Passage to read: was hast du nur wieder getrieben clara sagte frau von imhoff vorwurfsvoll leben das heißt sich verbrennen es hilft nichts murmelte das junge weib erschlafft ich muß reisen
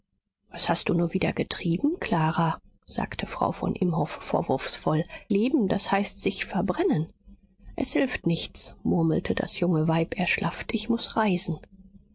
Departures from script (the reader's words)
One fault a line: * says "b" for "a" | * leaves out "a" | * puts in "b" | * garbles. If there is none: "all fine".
all fine